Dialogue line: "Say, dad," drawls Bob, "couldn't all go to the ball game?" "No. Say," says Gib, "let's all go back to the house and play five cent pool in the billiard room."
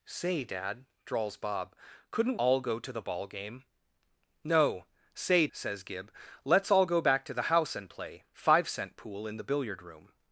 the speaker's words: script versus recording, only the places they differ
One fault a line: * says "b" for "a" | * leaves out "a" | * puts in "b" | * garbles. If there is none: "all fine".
all fine